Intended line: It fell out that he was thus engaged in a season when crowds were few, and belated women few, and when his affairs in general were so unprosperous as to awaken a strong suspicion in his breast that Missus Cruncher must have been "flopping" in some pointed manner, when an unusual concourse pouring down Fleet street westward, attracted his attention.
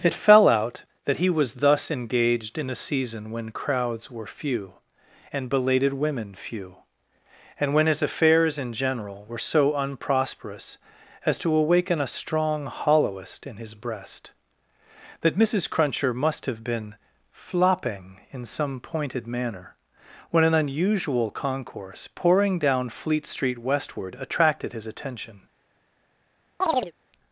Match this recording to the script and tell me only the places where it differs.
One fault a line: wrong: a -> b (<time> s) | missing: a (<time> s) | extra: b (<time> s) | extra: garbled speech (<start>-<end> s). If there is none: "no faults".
wrong: suspicion -> hollowest (12.7 s)